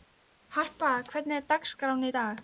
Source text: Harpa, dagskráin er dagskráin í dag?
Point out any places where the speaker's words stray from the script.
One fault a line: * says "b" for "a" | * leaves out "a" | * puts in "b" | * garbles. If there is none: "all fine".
* says "hvernig" for "dagskráin"